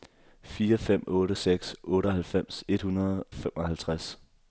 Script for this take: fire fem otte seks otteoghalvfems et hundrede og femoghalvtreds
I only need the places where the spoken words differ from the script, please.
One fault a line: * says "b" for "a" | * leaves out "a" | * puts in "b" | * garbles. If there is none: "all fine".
* leaves out "og"